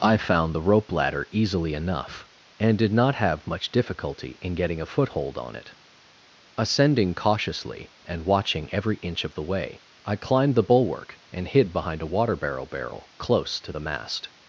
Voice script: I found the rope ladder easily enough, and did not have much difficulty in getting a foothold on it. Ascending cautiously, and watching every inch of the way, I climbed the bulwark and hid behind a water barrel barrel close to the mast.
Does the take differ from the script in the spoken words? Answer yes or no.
no